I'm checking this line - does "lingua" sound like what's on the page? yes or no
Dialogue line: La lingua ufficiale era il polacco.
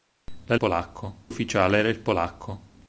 no